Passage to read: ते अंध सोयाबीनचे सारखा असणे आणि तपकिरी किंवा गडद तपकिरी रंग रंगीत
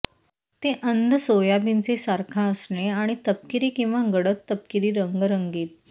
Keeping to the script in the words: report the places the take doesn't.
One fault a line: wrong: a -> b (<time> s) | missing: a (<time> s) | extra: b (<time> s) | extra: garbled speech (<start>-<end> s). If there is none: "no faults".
no faults